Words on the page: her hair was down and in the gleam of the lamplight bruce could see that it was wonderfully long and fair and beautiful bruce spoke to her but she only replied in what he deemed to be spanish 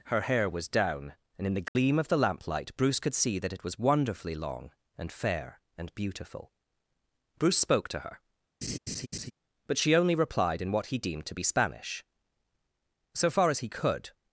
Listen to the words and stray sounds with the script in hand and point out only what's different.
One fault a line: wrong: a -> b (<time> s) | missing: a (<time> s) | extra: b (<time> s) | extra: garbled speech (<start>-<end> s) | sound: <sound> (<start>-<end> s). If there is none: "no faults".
sound: dropout (1.7-1.8 s)
sound: laugh (8.6-9.3 s)
extra: so far as he could (13.1 s)